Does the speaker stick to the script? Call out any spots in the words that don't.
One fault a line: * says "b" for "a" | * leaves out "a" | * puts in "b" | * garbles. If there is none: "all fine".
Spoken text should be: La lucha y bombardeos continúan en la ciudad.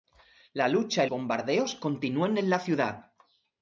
all fine